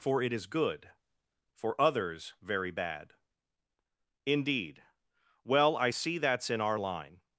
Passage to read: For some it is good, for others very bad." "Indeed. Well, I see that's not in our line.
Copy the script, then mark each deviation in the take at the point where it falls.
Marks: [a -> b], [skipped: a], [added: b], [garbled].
For [skipped: some] it is good, for others very bad." "Indeed. Well, I see that's [skipped: not] in our line.